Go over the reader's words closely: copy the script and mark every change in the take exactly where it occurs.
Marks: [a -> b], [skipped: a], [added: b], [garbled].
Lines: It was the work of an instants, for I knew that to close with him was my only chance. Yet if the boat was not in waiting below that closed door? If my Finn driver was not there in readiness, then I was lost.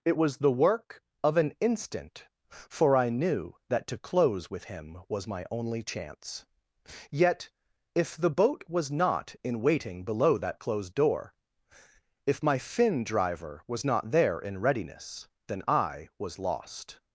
It was the work of an [instants, -> instant] for I knew that to close with him was my only chance. Yet if the boat was not in waiting below that closed door? If my Finn driver was not there in readiness, then I was lost.